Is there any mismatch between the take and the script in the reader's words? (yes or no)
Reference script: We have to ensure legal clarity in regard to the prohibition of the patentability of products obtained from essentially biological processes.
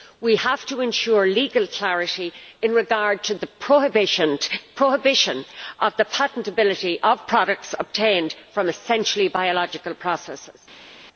no